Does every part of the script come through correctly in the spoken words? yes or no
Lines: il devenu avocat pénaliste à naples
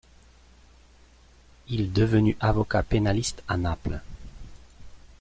yes